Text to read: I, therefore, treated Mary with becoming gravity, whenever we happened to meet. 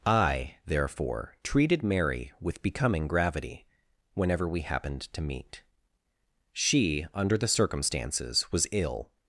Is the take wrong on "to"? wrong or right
right